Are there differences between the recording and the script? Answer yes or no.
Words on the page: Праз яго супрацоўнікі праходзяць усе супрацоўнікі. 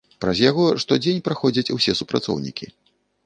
yes